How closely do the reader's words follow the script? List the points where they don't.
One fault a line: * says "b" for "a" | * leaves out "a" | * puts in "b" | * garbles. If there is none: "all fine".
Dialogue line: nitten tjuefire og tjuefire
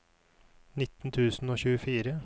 * says "tusen" for "tjuefire"